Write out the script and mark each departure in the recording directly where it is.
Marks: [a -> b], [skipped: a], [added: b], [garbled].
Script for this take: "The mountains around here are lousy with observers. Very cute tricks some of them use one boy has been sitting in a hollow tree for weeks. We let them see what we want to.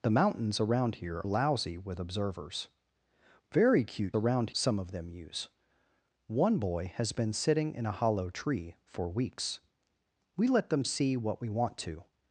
"The mountains around here [skipped: are] lousy with observers. Very cute [tricks -> around] some of them use one boy has been sitting in a hollow tree for weeks. We let them see what we want to.